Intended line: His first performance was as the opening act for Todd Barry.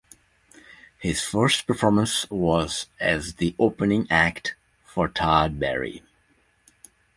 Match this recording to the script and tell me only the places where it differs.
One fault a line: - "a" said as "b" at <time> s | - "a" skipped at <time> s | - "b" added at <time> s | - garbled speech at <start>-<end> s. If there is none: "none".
none